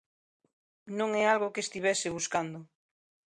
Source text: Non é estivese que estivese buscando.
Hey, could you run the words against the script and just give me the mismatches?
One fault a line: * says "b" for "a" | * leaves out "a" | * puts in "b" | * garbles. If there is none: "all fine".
* says "algo" for "estivese"